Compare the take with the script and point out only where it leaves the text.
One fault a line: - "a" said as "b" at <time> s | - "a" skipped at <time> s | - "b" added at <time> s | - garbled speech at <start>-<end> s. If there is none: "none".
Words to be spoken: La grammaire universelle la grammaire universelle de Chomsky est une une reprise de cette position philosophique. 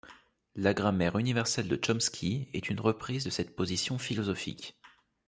- "la grammaire universelle" skipped at 1.7 s
- "une" skipped at 2.8 s